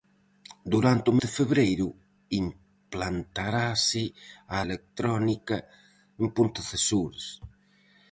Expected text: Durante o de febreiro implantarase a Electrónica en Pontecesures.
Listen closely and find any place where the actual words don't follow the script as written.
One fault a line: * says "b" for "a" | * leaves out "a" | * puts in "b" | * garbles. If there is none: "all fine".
all fine